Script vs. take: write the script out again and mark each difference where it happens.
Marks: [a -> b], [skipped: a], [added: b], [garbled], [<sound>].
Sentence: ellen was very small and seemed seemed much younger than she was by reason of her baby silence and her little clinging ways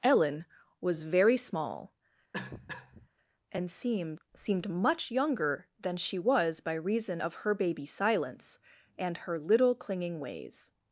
ellen was very small [cough] and seemed seemed much younger than she was by reason of her baby silence and her little clinging ways